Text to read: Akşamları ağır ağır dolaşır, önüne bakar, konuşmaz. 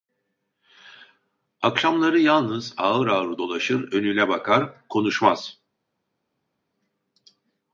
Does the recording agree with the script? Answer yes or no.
no